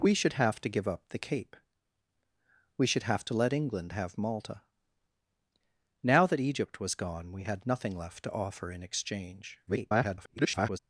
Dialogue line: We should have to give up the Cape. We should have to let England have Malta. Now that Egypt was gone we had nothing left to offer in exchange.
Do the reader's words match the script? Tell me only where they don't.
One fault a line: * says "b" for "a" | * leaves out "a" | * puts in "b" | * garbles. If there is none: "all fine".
* garbles